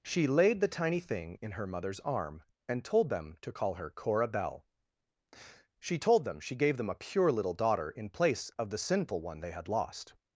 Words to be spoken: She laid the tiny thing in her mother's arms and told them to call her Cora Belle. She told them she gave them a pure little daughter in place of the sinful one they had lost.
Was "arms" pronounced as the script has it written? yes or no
no